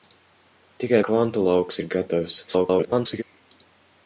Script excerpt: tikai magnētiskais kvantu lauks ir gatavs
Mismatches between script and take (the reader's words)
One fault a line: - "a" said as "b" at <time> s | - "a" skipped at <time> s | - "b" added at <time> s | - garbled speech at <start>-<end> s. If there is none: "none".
- "magnētiskais" skipped at 1.0 s
- garbled speech at 2.5-3.2 s